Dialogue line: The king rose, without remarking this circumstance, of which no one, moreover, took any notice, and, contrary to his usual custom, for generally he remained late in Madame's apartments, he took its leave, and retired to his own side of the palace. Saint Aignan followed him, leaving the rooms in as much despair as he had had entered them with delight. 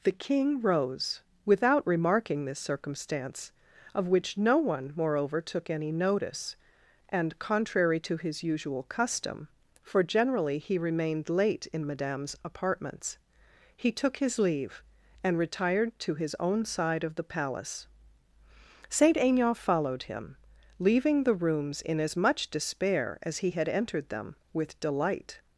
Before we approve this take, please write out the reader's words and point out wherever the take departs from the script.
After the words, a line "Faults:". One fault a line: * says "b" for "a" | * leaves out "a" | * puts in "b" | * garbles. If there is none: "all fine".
The king rose, without remarking this circumstance, of which no one, moreover, took any notice, and, contrary to his usual custom, for generally he remained late in Madame's apartments, he took his leave, and retired to his own side of the palace. Saint Aignan followed him, leaving the rooms in as much despair as he had entered them with delight.
Faults:
* says "his" for "its"
* leaves out "had"